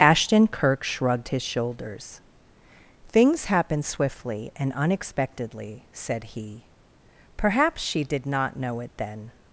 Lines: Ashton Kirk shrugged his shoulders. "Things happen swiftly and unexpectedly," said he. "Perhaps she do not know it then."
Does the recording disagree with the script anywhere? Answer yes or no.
yes